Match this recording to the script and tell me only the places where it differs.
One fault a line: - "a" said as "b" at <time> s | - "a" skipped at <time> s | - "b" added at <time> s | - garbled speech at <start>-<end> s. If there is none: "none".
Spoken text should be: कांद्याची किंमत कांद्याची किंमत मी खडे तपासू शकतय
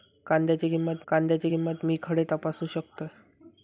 none